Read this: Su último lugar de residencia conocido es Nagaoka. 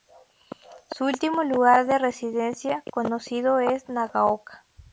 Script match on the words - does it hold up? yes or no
yes